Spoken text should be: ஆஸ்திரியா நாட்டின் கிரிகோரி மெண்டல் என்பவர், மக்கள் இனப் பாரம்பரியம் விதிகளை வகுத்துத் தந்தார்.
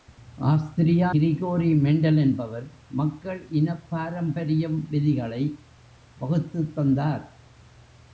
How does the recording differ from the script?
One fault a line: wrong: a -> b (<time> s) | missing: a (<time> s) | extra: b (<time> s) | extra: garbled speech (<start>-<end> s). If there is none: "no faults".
missing: நாட்டின் (1.1 s)